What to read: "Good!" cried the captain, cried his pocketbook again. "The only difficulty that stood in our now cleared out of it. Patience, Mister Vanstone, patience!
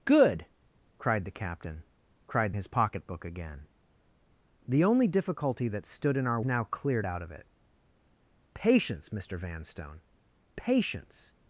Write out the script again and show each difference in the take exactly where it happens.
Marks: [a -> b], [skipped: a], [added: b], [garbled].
"Good!" cried the captain, cried his pocketbook again. "The only difficulty that stood in our now cleared out of it. Patience, Mister Vanstone, patience!